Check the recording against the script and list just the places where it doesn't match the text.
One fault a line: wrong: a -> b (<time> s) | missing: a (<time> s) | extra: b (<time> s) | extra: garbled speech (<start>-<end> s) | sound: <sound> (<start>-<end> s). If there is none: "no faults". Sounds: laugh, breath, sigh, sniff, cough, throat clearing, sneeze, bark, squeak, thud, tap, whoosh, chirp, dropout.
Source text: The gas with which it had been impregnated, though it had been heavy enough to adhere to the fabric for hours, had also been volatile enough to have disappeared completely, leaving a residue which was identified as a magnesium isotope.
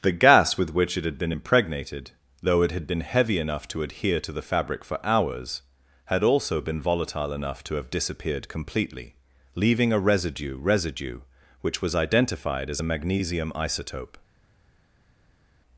extra: residue (10.6 s)